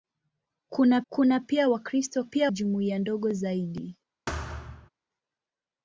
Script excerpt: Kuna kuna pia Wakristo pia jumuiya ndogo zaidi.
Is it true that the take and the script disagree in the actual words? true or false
false